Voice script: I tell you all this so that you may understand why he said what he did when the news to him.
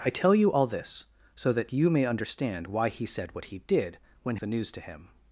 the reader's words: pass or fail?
pass